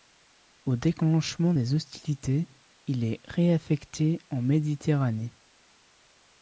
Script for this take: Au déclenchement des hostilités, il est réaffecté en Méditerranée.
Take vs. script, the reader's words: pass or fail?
pass